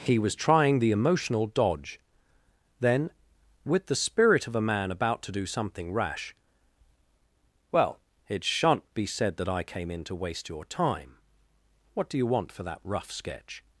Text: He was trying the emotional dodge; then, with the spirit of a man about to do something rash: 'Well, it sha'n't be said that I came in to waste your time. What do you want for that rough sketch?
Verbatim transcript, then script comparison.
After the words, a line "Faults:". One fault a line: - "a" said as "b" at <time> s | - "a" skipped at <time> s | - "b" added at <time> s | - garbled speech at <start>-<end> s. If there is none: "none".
He was trying the emotional dodge; then, with the spirit of a man about to do something rash: 'Well, it sha'n't be said that I came in to waste your time. What do you want for that rough sketch?
Faults:
none